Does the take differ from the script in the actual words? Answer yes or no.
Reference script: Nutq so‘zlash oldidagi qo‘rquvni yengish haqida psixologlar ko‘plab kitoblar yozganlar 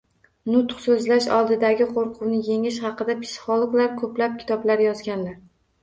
no